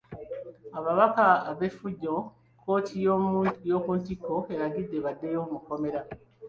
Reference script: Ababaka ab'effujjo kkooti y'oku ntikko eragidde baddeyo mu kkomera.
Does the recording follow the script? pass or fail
pass